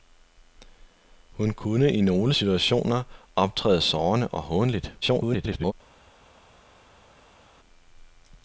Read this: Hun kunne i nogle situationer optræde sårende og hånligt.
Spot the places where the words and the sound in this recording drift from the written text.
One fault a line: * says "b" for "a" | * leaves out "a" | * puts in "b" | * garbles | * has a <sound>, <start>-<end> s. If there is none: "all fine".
* garbles